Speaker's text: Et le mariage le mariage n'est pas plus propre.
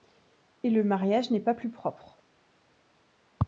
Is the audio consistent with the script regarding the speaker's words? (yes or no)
no